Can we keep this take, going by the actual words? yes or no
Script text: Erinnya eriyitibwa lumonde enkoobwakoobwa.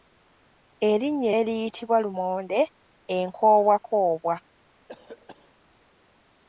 yes